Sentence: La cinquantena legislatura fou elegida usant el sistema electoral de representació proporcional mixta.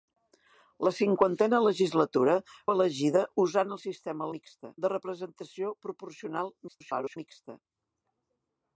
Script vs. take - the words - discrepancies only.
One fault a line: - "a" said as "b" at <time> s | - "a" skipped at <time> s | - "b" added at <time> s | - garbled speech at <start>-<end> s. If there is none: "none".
- "fou" skipped at 2.4 s
- "electoral" said as "mixta" at 4.4 s
- garbled speech at 6.7-7.2 s